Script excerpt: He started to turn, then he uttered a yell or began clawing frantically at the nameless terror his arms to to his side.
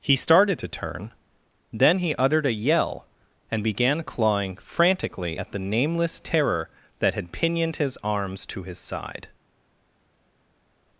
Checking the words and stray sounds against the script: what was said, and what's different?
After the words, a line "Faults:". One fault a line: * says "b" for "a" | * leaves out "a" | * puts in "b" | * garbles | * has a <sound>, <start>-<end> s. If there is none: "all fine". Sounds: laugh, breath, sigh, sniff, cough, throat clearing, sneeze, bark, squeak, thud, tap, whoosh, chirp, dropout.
He started to turn, then he uttered a yell and began clawing frantically at the nameless terror that had pinioned his arms to his side.
Faults:
* says "and" for "or"
* puts in "that had pinioned"
* leaves out "to"